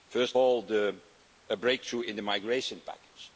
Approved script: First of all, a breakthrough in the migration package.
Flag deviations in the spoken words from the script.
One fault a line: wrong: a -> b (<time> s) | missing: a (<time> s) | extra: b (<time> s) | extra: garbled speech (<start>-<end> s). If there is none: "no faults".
missing: of (0.4 s)